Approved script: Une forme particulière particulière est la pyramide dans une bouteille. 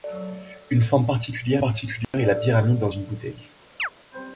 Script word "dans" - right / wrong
right